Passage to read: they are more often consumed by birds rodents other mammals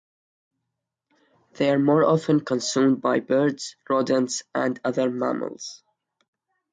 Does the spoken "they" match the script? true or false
true